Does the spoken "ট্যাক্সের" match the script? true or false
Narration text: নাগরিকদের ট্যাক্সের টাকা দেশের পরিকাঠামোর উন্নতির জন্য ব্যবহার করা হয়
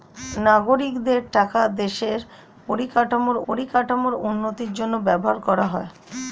false